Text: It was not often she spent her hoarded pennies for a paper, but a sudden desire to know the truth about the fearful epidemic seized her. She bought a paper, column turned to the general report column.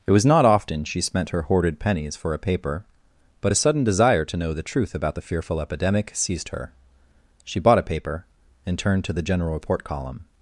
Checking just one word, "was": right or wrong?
right